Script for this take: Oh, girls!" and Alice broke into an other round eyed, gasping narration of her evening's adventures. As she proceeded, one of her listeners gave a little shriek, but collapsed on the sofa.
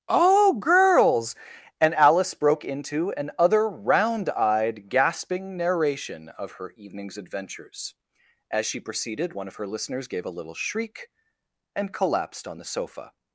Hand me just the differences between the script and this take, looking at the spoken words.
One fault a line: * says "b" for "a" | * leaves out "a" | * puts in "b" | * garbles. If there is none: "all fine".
* says "and" for "but"